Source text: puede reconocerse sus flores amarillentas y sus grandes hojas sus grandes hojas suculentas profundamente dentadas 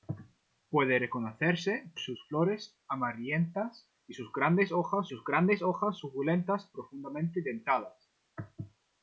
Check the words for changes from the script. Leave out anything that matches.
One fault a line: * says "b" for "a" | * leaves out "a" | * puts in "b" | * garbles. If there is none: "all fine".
all fine